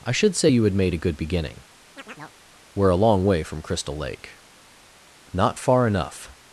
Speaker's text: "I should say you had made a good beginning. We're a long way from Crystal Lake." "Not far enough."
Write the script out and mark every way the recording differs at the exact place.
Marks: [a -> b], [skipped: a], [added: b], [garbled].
"I should say you had made a good beginning. We're a long way from Crystal Lake." "Not far enough."